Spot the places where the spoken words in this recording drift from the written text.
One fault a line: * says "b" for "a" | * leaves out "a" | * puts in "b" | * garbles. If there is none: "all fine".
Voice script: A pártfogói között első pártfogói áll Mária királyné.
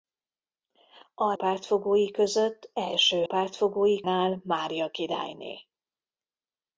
all fine